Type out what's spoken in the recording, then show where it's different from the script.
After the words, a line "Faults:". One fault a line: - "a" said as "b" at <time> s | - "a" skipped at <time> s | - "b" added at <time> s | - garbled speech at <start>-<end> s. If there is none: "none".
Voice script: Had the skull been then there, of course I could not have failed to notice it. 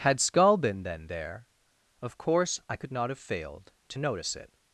Had skull been then there, of course I could not have failed to notice it.
Faults:
- "the" skipped at 0.2 s